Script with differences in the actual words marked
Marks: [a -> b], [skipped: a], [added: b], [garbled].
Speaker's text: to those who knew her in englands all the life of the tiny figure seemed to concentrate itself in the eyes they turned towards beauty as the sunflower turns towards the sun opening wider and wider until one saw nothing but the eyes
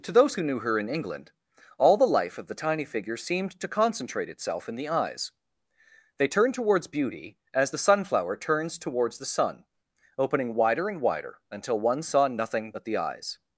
to those who knew her in [englands -> england] all the life of the tiny figure seemed to concentrate itself in the eyes they turned towards beauty as the sunflower turns towards the sun opening wider and wider until one saw nothing but the eyes